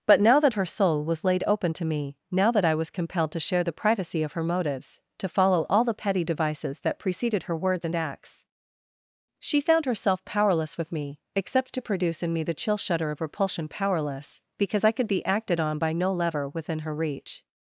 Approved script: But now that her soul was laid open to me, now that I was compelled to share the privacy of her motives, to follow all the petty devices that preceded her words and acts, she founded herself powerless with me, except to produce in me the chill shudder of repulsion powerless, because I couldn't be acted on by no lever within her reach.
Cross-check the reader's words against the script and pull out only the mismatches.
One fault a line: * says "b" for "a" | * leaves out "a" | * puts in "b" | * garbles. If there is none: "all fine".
* says "found" for "founded"
* says "could" for "couldn't"